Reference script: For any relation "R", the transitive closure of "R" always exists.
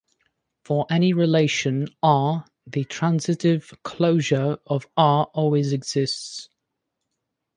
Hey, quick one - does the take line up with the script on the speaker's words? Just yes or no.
yes